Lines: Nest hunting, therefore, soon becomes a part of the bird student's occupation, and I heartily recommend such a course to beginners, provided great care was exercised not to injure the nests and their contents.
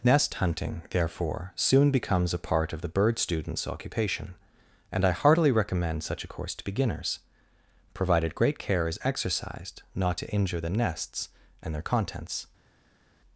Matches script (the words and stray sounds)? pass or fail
fail